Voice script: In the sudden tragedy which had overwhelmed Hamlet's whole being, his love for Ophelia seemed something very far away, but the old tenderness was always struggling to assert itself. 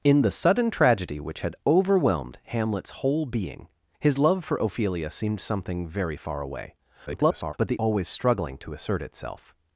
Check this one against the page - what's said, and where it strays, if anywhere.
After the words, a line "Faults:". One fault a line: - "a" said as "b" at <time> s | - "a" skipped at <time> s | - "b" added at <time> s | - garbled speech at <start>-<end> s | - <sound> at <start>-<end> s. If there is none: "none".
In the sudden tragedy which had overwhelmed Hamlet's whole being, his love for Ophelia seemed something very far away, [garbled] but the always struggling to assert itself.
Faults:
- garbled speech at 7.1-7.5 s
- "old tenderness was" skipped at 7.8 s